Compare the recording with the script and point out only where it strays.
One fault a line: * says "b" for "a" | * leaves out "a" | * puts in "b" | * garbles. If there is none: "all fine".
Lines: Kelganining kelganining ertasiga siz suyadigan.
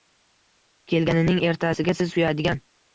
* leaves out "kelganining"